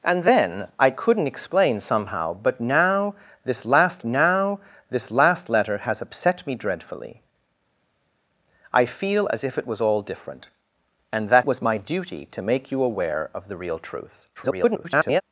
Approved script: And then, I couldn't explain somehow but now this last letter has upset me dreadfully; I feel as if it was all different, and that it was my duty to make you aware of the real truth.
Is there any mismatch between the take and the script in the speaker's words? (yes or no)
yes